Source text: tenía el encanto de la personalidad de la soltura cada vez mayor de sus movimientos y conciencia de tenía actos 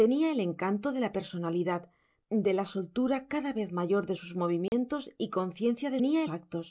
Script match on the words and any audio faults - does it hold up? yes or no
no